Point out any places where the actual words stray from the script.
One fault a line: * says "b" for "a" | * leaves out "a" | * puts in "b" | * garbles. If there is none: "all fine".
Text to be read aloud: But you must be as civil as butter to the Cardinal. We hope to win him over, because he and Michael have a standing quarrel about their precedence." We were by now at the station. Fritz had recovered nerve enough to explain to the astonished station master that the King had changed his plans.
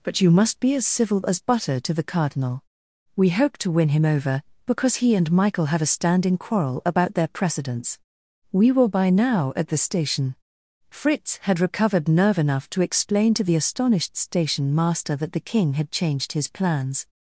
all fine